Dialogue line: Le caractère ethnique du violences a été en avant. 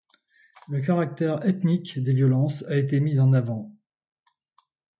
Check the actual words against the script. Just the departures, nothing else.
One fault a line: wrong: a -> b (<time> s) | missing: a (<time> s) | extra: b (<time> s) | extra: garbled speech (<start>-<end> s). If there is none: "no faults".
wrong: du -> des (2.0 s)
extra: mis (3.0 s)